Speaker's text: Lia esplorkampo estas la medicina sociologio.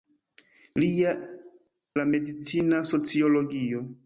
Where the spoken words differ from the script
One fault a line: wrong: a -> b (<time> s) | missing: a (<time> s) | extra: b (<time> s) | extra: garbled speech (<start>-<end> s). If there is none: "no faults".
missing: esplorkampo estas (1.1 s)